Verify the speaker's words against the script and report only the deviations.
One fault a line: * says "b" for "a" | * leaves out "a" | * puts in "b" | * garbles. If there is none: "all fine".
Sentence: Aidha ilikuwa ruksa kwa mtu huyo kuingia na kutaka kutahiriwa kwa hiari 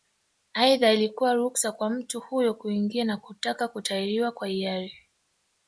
all fine